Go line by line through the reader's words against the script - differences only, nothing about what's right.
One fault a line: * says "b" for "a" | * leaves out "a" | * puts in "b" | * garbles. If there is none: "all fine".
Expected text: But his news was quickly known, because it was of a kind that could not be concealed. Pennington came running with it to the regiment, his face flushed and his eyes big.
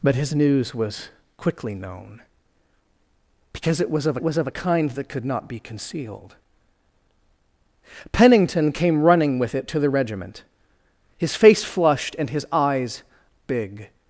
* puts in "was of"